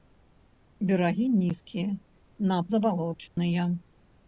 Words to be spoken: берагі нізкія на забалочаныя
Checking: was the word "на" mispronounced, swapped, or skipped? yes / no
no